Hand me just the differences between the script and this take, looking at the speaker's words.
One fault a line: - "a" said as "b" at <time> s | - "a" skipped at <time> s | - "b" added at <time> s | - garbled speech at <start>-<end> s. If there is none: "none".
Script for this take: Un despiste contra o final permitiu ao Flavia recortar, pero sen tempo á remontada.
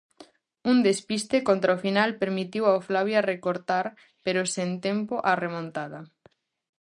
none